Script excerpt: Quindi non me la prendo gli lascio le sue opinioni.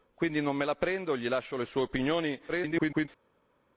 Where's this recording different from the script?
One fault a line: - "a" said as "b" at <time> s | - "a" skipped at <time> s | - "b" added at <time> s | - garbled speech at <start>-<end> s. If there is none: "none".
- garbled speech at 2.5-3.1 s